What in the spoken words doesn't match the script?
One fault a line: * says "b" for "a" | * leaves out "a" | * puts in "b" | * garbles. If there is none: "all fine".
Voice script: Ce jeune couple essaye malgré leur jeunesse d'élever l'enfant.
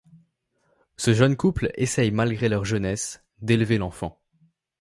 all fine